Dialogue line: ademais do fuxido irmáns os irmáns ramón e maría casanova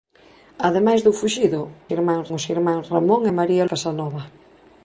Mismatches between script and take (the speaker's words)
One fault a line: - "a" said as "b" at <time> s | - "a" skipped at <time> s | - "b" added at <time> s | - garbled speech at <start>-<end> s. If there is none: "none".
none